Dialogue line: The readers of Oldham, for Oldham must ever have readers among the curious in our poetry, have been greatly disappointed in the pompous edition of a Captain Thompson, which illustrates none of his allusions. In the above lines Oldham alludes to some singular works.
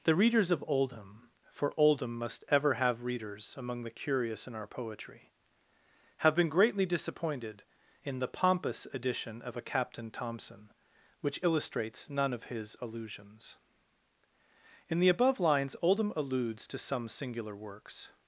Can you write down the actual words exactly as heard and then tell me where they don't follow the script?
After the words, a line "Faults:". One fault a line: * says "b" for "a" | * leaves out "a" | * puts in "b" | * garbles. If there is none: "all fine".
The readers of Oldham, for Oldham must ever have readers among the curious in our poetry, have been greatly disappointed in the pompous edition of a Captain Thompson, which illustrates none of his allusions. In the above lines Oldham alludes to some singular works.
Faults:
all fine